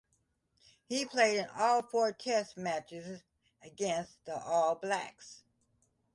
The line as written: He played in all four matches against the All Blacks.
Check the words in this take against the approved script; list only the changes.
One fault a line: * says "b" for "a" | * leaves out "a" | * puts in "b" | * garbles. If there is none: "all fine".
* puts in "test"